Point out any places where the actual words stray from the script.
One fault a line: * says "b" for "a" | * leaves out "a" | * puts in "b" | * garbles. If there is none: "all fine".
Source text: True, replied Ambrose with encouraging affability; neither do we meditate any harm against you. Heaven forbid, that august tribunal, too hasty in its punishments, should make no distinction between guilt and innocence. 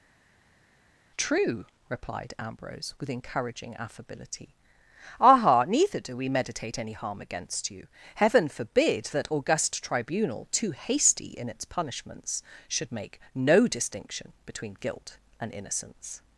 * puts in "aha"